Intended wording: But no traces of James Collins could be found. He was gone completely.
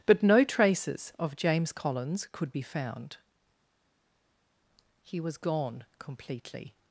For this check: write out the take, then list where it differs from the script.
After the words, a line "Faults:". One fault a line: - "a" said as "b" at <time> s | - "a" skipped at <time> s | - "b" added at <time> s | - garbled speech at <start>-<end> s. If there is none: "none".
But no traces of James Collins could be found. He was gone completely.
Faults:
none